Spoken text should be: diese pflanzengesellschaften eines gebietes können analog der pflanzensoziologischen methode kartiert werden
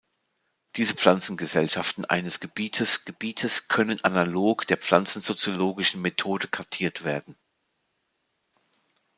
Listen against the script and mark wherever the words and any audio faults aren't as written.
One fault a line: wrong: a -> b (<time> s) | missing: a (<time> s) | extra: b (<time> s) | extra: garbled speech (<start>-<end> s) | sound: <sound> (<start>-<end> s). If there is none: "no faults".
extra: gebietes (3.0 s)